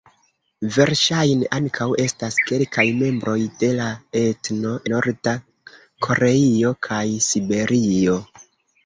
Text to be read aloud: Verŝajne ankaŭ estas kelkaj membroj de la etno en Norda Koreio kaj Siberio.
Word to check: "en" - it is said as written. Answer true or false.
false